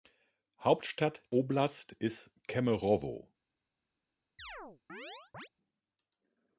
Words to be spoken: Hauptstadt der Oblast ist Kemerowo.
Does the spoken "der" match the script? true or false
false